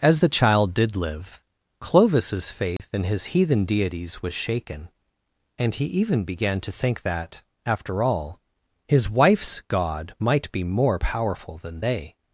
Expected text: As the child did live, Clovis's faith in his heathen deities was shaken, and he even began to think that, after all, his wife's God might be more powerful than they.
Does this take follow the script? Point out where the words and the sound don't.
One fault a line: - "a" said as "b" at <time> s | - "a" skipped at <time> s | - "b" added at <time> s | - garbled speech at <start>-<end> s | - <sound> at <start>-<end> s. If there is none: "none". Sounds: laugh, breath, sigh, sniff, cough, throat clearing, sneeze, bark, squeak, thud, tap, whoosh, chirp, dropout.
- dropout at 2.8-2.8 s